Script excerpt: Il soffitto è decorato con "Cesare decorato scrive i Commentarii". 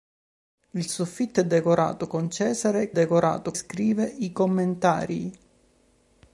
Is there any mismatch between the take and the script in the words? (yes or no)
no